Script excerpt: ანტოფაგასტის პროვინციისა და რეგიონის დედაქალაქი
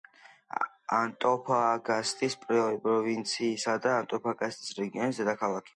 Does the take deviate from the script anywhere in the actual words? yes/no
yes